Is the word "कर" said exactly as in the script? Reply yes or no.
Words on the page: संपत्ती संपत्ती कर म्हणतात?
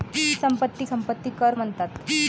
yes